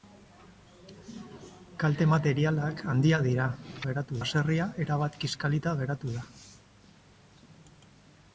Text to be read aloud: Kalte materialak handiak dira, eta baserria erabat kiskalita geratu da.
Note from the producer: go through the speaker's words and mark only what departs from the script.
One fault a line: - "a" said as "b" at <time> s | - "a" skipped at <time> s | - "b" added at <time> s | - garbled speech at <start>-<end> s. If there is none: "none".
- "eta" said as "geratu" at 3.9 s